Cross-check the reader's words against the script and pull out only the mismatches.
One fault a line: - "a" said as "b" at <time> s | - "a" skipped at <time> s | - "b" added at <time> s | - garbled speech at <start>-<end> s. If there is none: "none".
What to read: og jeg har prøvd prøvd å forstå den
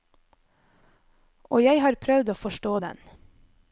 - "prøvd" skipped at 2.3 s